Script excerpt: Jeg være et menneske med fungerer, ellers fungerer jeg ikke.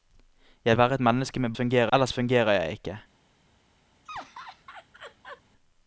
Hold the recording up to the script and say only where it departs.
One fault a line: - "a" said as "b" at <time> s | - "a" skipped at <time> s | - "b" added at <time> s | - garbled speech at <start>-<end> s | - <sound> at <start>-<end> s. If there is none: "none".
- laugh at 4.1-5.4 s